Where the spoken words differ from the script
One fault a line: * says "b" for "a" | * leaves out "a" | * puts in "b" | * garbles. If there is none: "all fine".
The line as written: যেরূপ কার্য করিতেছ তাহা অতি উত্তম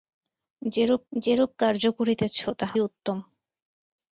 * puts in "যেরূপ"
* leaves out "অতি"